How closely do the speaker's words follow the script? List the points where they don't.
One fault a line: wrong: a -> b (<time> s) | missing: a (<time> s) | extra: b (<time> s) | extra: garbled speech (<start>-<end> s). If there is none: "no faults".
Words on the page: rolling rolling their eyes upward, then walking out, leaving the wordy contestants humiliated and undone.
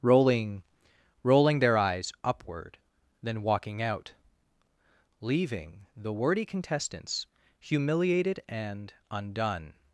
no faults